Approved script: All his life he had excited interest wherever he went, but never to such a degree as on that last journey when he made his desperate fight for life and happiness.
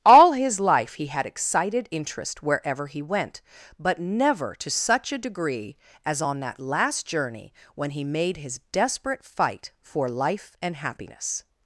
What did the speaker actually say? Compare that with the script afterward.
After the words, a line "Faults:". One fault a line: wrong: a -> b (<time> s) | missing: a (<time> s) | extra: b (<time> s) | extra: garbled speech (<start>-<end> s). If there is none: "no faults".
All his life he had excited interest wherever he went, but never to such a degree as on that last journey when he made his desperate fight for life and happiness.
Faults:
no faults